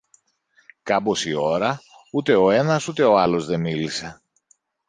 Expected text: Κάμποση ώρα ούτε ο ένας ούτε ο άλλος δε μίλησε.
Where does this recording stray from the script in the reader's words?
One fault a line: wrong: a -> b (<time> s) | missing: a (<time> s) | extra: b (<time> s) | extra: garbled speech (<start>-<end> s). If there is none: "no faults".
no faults